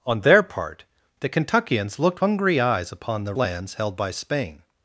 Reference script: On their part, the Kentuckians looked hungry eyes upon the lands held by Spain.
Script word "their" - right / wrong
right